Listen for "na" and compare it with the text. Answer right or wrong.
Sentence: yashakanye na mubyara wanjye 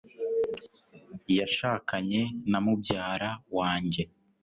right